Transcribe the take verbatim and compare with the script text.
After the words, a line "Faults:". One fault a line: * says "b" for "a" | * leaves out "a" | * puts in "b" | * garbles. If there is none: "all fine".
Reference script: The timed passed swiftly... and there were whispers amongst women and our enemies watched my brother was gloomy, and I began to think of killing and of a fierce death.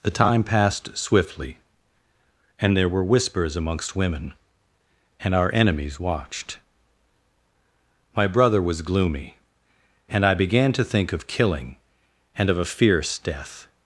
The time passed swiftly... and there were whispers amongst women and our enemies watched my brother was gloomy, and I began to think of killing and of a fierce death.
Faults:
* says "time" for "timed"